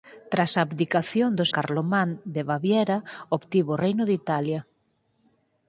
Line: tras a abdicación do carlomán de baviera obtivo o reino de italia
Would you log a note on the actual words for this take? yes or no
no